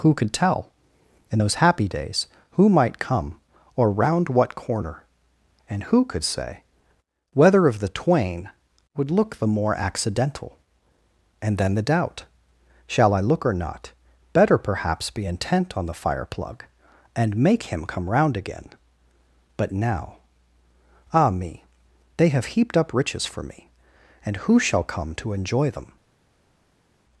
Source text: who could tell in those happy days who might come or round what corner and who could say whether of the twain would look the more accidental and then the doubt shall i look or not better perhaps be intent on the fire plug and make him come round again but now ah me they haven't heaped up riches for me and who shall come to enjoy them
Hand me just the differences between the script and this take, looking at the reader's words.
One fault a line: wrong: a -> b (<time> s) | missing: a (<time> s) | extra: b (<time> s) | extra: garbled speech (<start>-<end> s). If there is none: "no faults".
wrong: haven't -> have (22.3 s)